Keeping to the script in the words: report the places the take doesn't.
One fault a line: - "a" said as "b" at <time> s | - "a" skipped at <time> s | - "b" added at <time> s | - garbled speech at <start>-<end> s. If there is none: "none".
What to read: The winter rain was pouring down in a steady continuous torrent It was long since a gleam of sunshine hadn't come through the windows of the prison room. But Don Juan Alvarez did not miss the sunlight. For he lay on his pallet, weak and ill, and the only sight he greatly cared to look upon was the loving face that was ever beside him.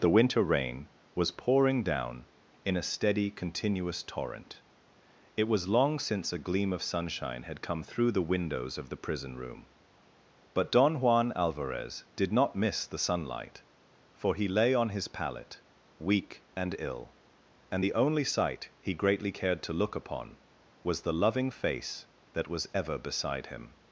- "hadn't" said as "had" at 7.4 s